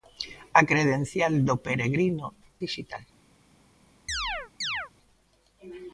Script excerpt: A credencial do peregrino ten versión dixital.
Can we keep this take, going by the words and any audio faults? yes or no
no